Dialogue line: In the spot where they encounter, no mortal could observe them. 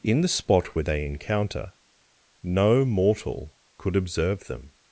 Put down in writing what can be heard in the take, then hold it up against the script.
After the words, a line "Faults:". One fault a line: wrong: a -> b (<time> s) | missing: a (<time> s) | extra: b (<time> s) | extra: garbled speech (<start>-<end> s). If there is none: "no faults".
In the spot where they encounter, no mortal could observe them.
Faults:
no faults